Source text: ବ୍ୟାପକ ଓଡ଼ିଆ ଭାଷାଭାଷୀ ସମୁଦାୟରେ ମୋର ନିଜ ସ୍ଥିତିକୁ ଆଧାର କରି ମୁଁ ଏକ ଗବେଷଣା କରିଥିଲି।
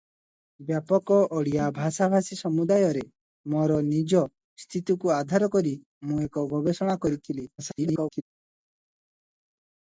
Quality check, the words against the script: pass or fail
fail